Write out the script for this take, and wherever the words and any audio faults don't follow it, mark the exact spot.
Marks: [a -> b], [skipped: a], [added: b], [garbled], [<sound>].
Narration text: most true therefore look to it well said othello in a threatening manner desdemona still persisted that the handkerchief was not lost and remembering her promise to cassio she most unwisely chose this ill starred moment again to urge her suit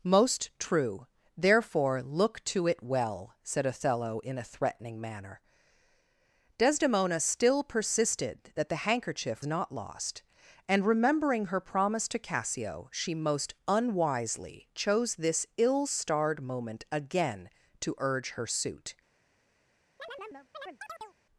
most true therefore look to it well said othello in a threatening manner desdemona still persisted that the handkerchief [skipped: was] not lost and remembering her promise to cassio she most unwisely chose this ill starred moment again to urge her suit [chirp]